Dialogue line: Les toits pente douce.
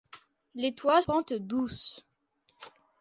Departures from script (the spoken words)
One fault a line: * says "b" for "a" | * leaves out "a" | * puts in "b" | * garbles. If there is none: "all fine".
all fine